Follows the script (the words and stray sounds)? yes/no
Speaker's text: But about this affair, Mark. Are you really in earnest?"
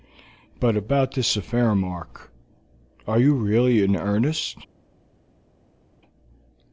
yes